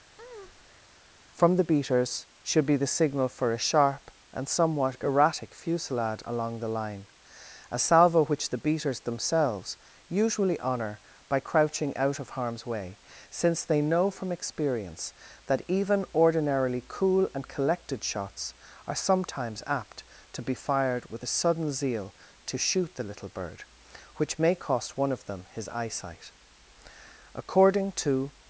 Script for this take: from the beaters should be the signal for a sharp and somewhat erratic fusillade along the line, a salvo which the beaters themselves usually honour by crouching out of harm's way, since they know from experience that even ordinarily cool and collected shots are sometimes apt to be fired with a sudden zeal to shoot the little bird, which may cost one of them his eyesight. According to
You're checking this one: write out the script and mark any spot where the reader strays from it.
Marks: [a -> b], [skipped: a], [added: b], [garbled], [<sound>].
[breath] from the beaters should be the signal for a sharp and somewhat erratic fusillade along the line, a salvo which the beaters themselves usually honour by crouching out of harm's way, since they know from experience that even ordinarily cool and collected shots are sometimes apt to be fired with a sudden zeal to shoot the little bird, which may cost one of them his eyesight. According to